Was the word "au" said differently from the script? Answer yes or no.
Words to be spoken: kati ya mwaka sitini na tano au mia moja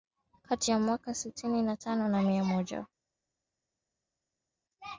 yes